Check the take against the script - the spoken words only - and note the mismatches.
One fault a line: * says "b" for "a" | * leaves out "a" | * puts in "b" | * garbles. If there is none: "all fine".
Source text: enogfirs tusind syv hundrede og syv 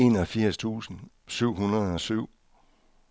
all fine